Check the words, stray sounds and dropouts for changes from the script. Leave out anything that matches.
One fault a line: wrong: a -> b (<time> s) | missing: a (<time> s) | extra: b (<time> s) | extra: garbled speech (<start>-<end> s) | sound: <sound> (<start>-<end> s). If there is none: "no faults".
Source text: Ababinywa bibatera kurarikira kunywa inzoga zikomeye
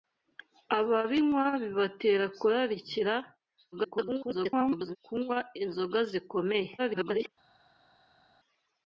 extra: garbled speech (3.7-5.0 s)
extra: garbled speech (6.8-7.3 s)